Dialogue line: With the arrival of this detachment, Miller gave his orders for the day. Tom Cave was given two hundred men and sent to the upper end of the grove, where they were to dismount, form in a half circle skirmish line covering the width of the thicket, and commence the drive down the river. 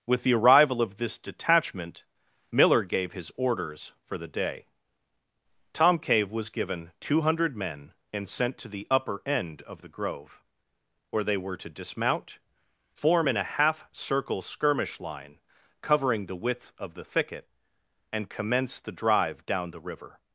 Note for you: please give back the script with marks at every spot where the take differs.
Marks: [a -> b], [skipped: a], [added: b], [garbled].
With the arrival of this detachment, Miller gave his orders for the day. Tom Cave was given two hundred men and sent to the upper end of the grove, where they were to dismount, form in a half circle skirmish line covering the width of the thicket, and commence the drive down the river.